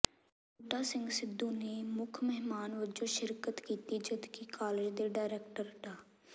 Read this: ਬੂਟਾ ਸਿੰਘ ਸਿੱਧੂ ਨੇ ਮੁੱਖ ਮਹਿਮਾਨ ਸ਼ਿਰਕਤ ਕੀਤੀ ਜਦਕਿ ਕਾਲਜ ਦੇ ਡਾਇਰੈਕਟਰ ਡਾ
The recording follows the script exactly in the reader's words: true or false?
false